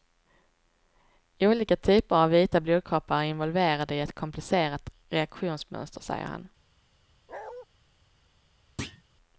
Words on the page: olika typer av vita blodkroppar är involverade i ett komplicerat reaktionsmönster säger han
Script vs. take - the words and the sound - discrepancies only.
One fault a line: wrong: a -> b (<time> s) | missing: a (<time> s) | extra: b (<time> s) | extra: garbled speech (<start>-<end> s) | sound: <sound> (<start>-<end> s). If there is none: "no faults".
sound: bark (7.3-7.7 s)
sound: thud (8.8-9.0 s)